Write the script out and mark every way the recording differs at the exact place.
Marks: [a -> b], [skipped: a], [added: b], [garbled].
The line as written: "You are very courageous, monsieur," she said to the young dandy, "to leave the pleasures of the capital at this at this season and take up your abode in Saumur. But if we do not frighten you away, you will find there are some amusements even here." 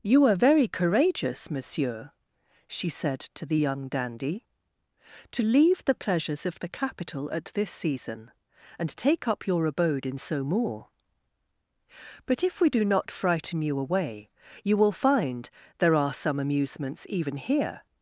"You are very courageous, monsieur," she said to the young dandy, "to leave the pleasures of the capital at this [skipped: at this] season and take up your abode in Saumur. But if we do not frighten you away, you will find there are some amusements even here."